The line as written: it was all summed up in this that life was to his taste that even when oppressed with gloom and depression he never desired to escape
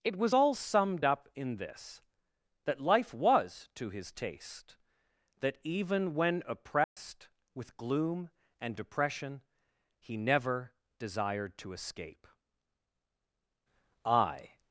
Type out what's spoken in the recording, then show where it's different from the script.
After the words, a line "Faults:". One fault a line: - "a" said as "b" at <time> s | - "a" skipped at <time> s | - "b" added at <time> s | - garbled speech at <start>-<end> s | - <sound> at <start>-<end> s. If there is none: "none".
it was all summed up in this that life was to his taste that even when oppressed with gloom and depression he never desired to escape i
Faults:
- dropout at 6.8-7.0 s
- "i" added at 14.0 s